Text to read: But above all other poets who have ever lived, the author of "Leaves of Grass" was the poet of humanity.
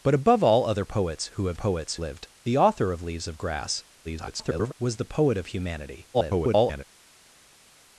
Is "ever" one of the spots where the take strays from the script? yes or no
yes